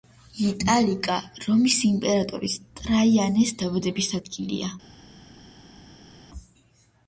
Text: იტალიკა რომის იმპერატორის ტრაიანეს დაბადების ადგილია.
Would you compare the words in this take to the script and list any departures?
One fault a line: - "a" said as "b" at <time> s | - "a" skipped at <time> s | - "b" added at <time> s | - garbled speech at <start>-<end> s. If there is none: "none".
none